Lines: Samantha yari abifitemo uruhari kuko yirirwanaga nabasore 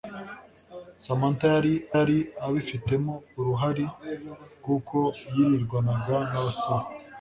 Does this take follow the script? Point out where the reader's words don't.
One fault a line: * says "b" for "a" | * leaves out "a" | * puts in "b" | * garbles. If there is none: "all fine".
* puts in "yari"